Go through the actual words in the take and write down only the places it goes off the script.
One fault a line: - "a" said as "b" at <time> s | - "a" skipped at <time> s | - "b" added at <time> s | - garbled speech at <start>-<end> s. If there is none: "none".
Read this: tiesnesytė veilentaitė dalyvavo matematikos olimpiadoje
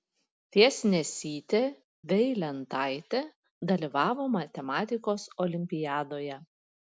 none